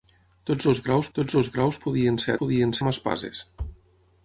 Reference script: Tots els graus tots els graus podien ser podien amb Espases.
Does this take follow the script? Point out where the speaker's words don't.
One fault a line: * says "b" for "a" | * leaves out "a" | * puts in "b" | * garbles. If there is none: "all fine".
all fine